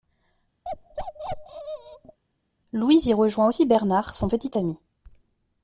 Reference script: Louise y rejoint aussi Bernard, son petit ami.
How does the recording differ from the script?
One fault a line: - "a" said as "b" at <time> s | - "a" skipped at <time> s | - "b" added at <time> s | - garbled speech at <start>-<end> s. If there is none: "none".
none